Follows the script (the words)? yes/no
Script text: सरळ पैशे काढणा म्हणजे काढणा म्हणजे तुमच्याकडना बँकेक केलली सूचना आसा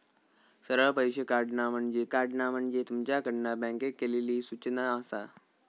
yes